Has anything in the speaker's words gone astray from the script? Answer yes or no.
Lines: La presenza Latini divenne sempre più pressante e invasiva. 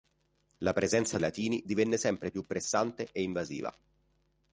no